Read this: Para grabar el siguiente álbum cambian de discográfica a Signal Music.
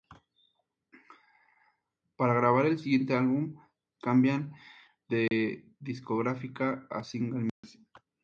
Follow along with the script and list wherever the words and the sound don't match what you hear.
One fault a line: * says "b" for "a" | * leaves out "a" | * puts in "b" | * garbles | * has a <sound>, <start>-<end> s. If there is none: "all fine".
* has a dropout, 5.3-5.3 s
* has a dropout, 7.5-7.6 s